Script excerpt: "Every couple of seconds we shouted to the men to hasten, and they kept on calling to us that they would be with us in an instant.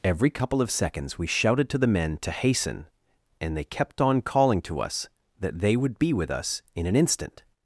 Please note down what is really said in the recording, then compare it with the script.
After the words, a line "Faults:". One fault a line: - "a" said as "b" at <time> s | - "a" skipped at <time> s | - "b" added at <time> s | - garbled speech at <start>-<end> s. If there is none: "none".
"Every couple of seconds we shouted to the men to hasten, and they kept on calling to us that they would be with us in an instant.
Faults:
none